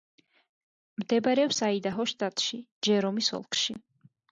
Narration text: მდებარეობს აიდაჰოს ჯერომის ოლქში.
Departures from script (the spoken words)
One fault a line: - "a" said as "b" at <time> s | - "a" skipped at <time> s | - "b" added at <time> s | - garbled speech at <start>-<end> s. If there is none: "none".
- "შტატში" added at 2.2 s